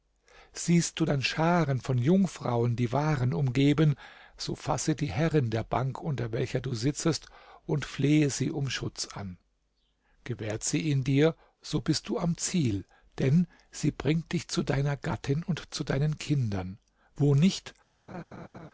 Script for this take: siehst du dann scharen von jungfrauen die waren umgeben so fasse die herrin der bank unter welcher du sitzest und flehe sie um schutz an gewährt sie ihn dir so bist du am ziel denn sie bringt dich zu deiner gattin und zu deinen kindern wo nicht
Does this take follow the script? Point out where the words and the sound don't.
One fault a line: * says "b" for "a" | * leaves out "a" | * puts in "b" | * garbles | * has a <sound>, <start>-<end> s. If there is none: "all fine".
* has a laugh, 18.1-18.7 s